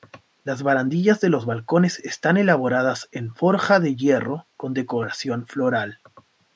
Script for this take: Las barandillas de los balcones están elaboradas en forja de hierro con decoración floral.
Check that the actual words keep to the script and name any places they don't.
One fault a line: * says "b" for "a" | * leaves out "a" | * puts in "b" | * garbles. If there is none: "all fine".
all fine